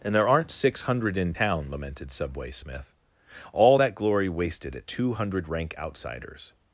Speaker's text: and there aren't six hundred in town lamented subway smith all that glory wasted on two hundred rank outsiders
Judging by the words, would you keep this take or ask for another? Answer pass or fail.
fail